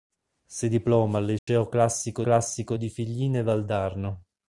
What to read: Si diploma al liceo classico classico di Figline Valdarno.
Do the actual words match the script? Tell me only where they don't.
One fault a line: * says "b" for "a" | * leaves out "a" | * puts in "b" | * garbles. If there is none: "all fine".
all fine